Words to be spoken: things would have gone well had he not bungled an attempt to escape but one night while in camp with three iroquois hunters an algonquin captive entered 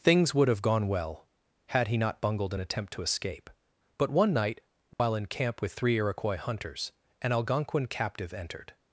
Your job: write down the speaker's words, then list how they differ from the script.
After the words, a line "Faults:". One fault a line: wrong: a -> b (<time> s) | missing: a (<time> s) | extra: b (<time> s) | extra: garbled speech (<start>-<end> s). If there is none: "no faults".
things would have gone well had he not bungled an attempt to escape but one night while in camp with three iroquois hunters an algonquin captive entered
Faults:
no faults